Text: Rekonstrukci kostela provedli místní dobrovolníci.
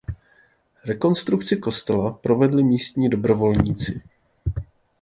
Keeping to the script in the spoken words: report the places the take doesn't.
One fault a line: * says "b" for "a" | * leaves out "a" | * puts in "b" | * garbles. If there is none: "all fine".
all fine